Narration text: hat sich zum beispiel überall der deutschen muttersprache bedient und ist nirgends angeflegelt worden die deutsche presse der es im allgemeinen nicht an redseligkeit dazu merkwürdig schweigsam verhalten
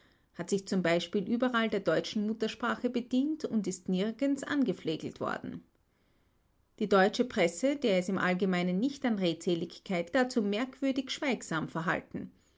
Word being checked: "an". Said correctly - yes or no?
yes